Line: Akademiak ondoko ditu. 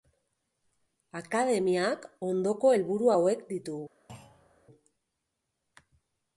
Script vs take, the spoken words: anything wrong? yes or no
yes